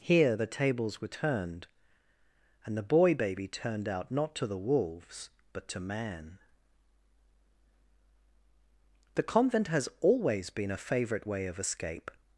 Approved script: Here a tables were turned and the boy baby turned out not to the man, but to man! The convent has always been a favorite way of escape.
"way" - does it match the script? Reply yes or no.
yes